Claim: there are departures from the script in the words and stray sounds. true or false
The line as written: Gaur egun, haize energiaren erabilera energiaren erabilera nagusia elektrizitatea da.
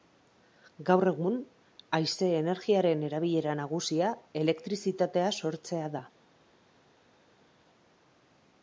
true